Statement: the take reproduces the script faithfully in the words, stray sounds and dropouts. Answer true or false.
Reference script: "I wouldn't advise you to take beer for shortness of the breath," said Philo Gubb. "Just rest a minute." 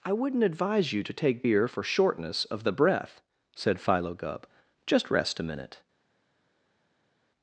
true